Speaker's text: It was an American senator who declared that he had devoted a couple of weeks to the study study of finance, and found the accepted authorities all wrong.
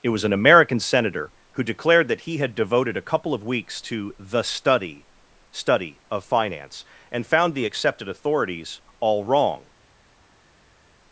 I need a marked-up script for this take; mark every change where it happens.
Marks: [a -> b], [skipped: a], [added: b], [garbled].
It was an American senator who declared that he had devoted a couple of weeks to the study study of finance, and found the accepted authorities all wrong.